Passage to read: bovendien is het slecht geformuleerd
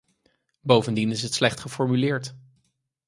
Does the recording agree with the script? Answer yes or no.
yes